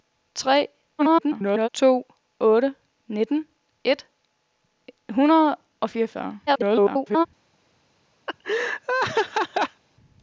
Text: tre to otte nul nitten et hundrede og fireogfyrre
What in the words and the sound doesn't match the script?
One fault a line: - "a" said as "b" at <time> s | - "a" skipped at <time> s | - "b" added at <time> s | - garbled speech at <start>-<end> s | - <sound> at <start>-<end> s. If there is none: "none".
- garbled speech at 1.0-1.7 s
- "nul" skipped at 2.7 s
- garbled speech at 6.5-7.3 s
- laugh at 8.3-9.8 s